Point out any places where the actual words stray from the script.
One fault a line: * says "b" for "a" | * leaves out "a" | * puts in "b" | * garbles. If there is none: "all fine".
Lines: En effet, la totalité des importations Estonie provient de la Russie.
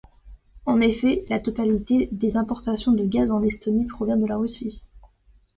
* puts in "de gaz en"